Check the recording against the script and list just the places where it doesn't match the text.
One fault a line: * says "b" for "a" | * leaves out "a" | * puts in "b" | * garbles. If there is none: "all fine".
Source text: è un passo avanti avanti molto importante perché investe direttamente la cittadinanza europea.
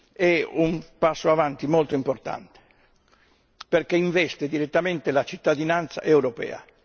* leaves out "avanti"